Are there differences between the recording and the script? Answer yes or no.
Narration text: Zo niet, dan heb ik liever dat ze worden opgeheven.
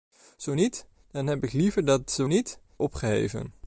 yes